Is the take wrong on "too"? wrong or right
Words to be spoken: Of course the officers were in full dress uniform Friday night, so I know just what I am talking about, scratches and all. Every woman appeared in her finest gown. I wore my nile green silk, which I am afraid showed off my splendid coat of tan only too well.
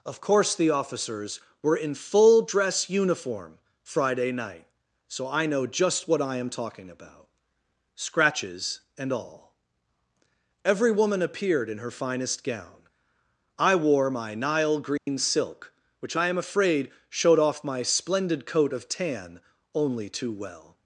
right